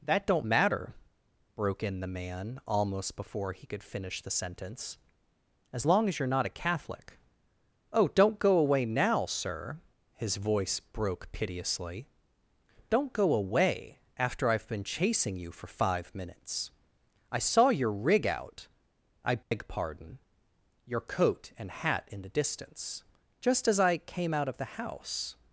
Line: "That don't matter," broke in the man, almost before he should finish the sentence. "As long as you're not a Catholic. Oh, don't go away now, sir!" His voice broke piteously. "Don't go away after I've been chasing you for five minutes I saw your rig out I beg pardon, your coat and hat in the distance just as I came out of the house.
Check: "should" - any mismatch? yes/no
yes